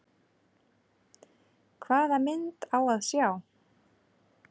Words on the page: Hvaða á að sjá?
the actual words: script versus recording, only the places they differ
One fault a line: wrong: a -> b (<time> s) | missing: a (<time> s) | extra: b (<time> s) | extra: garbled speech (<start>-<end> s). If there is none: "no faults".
extra: mynd (2.2 s)